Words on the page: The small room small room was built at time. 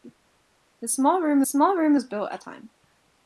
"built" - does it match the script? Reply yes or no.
yes